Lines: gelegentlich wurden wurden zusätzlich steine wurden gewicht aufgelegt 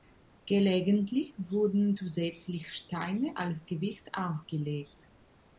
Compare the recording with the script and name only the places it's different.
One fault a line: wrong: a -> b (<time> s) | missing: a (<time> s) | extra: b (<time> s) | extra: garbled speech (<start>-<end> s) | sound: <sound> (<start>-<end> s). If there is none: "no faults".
missing: wurden (1.9 s)
wrong: wurden -> als (3.4 s)